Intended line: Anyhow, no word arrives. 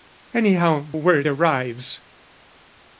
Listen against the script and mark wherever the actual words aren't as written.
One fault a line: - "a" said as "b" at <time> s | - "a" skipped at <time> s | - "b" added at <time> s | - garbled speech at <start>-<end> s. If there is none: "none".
- "no" skipped at 0.9 s